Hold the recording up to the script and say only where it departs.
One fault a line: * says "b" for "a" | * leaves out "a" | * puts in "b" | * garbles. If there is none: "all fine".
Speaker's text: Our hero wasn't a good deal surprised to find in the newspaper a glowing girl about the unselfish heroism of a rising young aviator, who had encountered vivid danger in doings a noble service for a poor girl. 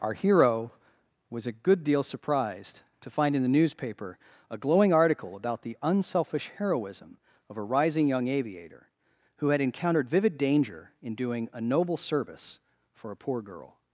* says "was" for "wasn't"
* says "article" for "girl"
* says "doing" for "doings"